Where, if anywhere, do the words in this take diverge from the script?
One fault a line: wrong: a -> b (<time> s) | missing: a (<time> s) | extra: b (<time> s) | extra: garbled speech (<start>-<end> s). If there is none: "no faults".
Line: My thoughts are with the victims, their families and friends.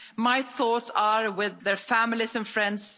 missing: the victims (1.6 s)